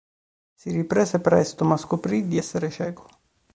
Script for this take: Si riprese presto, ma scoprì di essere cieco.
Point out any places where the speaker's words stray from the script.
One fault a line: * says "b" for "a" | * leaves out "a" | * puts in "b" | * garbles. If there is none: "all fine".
all fine